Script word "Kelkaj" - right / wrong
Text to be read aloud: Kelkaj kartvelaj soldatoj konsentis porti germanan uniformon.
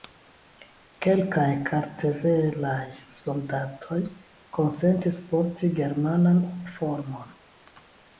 right